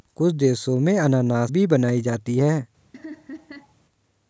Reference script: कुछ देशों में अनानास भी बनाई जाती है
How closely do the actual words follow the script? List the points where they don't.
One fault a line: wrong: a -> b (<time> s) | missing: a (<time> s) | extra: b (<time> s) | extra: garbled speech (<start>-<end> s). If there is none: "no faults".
no faults